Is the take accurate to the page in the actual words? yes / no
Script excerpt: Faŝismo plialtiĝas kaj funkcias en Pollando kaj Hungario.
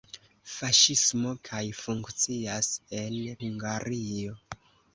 no